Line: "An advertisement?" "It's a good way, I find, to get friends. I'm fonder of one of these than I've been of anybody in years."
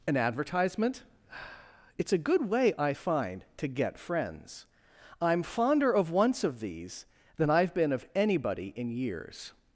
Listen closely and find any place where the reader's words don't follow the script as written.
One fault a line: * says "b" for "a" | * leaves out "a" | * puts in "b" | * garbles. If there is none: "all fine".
* says "once" for "one"